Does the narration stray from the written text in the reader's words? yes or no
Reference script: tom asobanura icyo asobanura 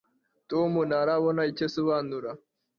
yes